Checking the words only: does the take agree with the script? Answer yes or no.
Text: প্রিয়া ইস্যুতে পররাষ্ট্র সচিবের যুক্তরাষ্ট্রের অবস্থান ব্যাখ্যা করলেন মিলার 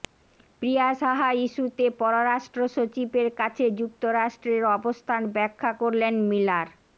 no